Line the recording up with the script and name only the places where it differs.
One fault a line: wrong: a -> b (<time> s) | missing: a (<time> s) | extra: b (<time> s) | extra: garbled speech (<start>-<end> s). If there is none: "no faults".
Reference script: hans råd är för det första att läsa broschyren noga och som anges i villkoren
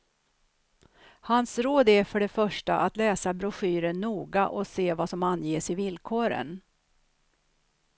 extra: se vad (4.7 s)